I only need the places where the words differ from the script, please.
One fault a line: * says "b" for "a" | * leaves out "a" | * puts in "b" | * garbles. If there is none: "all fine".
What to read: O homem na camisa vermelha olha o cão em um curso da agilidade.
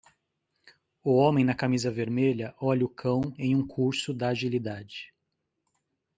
all fine